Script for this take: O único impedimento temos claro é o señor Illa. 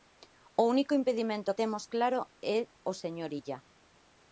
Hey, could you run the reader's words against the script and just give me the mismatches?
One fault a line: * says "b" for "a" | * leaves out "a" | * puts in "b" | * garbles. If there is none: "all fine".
all fine